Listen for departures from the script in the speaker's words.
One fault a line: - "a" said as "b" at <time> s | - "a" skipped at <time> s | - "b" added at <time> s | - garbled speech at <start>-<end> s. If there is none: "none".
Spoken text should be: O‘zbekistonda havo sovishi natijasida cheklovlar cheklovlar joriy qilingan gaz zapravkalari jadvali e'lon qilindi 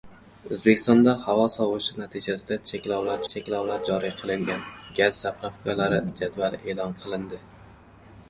none